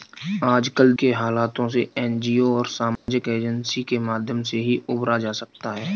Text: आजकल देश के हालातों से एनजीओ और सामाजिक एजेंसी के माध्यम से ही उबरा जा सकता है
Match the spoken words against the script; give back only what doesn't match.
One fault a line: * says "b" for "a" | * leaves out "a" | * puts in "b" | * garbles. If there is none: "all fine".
* leaves out "देश"